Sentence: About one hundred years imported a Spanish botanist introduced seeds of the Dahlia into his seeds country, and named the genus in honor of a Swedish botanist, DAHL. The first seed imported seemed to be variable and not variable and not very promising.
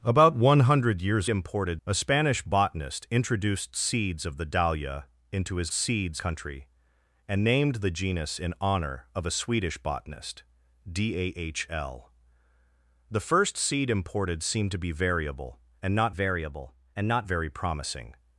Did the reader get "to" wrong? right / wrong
right